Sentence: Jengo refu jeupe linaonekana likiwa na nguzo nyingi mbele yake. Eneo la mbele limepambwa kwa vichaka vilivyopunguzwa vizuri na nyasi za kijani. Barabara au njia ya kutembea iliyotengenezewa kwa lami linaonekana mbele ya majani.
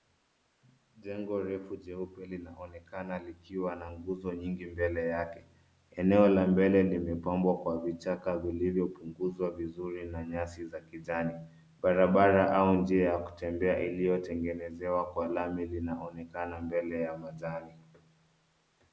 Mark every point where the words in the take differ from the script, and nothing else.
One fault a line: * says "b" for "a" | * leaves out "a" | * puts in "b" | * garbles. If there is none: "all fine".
all fine